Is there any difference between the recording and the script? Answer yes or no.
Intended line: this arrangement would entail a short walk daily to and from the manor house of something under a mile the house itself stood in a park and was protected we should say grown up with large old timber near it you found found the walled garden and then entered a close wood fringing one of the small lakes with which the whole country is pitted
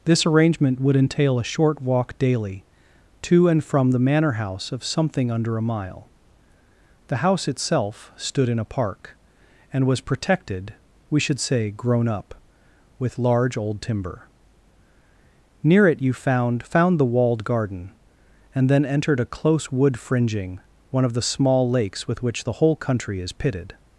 no